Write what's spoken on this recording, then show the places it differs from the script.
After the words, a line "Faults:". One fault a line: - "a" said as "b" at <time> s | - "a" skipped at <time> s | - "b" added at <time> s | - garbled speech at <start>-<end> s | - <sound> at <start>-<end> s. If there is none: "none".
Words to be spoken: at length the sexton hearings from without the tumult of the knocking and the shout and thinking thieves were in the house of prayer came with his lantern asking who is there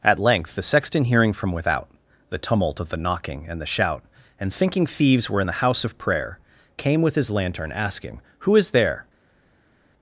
at length the sexton hearing from without the tumult of the knocking and the shout and thinking thieves were in the house of prayer came with his lantern asking who is there
Faults:
- "hearings" said as "hearing" at 1.1 s